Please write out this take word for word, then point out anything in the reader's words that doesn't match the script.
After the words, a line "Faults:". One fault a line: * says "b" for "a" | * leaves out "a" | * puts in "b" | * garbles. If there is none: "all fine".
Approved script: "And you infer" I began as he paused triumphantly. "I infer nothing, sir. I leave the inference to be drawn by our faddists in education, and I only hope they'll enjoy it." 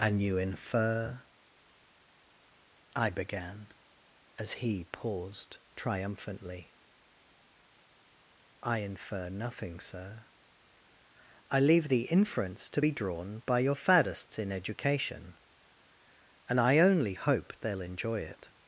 "And you infer" I began as he paused triumphantly. "I infer nothing, sir. I leave the inference to be drawn by your faddists in education, and I only hope they'll enjoy it."
Faults:
* says "your" for "our"